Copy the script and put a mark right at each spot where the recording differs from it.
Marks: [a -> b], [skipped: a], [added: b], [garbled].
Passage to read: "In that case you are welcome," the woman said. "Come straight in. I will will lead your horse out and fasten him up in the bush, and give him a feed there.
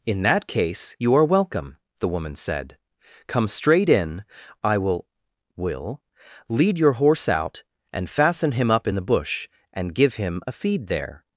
"In that case you are welcome," the woman said. "Come straight in. I will will lead your horse out and fasten him up in the bush, and give him a feed there.